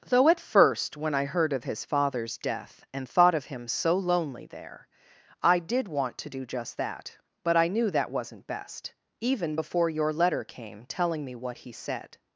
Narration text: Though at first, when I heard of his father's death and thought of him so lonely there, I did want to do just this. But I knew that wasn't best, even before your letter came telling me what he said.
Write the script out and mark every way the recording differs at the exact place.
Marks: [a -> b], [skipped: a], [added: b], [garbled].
Though at first, when I heard of his father's death and thought of him so lonely there, I did want to do just [this. -> that] But I knew that wasn't best, even before your letter came telling me what he said.